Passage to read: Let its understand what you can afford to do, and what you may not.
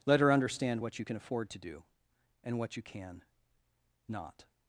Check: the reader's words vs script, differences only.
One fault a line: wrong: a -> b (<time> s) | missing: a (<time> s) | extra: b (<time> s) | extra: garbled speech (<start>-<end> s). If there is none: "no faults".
wrong: its -> her (0.2 s)
wrong: may -> can (2.8 s)